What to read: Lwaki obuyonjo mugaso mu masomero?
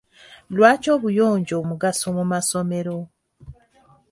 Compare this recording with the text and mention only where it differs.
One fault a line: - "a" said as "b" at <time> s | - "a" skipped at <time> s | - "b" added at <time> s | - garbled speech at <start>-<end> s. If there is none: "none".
none